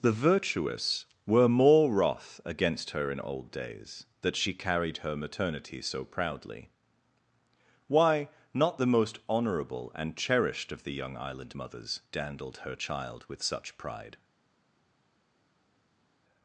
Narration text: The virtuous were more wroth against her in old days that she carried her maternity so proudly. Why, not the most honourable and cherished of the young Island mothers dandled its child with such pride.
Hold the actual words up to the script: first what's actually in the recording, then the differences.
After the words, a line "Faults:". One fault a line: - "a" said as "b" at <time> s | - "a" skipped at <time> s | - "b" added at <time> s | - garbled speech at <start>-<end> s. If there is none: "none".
The virtuous were more wroth against her in old days that she carried her maternity so proudly. Why, not the most honourable and cherished of the young Island mothers dandled her child with such pride.
Faults:
- "its" said as "her" at 12.6 s